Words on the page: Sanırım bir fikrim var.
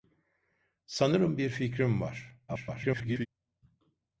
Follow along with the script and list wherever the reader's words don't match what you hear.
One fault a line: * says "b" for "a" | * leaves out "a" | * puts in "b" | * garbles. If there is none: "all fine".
* garbles